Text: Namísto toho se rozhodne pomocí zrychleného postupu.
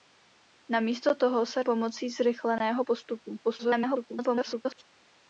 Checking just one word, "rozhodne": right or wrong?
wrong